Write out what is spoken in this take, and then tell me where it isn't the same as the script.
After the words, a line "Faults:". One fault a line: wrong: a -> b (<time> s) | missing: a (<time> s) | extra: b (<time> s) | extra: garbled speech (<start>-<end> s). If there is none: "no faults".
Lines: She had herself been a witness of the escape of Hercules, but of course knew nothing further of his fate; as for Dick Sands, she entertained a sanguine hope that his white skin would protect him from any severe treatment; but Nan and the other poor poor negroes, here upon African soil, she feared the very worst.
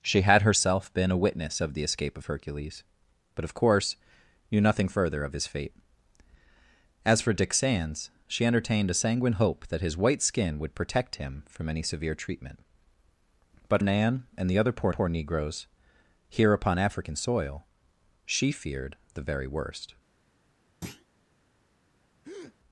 She had herself been a witness of the escape of Hercules, but of course knew nothing further of his fate; as for Dick Sands, she entertained a sanguine hope that his white skin would protect him from any severe treatment; but Nan and the other poor poor negroes, here upon African soil, she feared the very worst.
Faults:
no faults